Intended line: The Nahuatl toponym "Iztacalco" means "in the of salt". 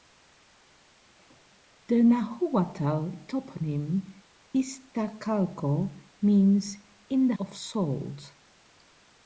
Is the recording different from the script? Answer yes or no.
no